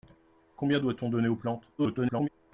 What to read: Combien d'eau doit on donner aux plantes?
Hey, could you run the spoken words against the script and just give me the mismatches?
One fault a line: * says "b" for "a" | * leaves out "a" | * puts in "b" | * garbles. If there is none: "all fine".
* leaves out "d'eau"
* garbles